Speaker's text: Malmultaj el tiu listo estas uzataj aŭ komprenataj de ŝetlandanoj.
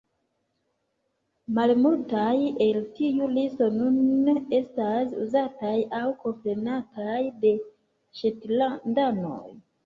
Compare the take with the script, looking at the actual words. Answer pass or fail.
fail